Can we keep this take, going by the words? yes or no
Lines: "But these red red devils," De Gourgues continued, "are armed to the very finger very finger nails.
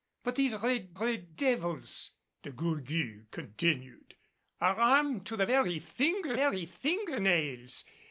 yes